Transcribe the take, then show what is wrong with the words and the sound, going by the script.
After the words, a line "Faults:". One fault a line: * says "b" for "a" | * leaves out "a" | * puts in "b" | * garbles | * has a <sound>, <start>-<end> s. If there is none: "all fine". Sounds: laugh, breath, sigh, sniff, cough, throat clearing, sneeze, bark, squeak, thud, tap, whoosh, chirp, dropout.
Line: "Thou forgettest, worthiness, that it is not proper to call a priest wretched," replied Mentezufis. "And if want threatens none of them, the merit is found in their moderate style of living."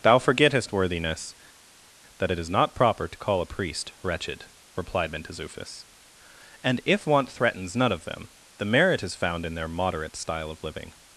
"Thou forgettest, worthiness, that it is not proper to call a priest wretched," replied Mentezufis. "And if want threatens none of them, the merit is found in their moderate style of living."
Faults:
all fine